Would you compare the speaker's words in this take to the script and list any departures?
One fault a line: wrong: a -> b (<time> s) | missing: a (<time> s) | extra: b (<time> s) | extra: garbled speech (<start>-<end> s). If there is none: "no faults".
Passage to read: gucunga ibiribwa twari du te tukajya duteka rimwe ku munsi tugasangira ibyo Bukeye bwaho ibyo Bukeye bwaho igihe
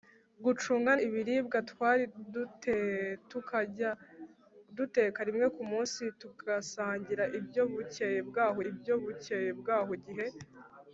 no faults